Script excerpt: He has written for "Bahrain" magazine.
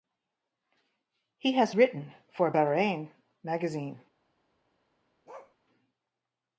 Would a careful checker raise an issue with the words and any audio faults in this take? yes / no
yes